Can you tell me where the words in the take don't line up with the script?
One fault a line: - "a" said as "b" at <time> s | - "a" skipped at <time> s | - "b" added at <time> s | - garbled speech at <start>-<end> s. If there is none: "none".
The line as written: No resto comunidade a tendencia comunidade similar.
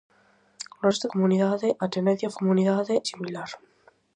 none